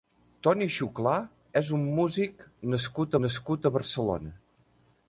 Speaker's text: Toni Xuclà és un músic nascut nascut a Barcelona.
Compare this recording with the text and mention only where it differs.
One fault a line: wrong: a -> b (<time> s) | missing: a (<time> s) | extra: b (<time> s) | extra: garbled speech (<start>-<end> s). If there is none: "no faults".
no faults